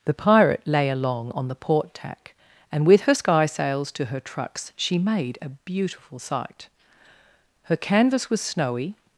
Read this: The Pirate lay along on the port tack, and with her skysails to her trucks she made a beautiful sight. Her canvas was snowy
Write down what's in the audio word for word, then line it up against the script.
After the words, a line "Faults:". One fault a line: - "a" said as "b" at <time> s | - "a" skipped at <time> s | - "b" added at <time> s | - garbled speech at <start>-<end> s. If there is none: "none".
The Pirate lay along on the port tack, and with her skysails to her trucks she made a beautiful sight. Her canvas was snowy
Faults:
none